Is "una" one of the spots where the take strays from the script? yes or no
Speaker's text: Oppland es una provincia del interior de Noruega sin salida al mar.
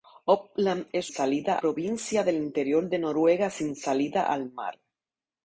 yes